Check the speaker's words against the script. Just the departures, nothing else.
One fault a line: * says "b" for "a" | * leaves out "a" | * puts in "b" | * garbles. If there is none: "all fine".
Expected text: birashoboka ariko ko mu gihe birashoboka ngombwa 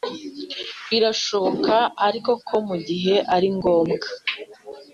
* says "ari" for "birashoboka"